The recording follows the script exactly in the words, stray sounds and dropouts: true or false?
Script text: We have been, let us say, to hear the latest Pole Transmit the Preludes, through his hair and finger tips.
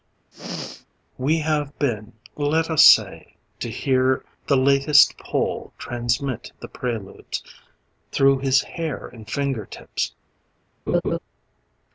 false